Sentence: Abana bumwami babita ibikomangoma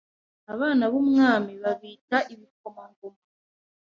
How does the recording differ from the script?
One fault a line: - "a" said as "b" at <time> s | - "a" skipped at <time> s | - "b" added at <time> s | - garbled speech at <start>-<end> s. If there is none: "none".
none